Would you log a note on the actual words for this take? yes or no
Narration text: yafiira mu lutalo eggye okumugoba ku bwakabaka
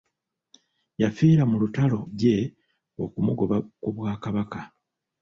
no